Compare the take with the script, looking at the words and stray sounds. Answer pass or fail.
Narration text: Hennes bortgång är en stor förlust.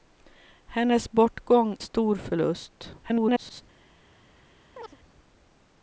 fail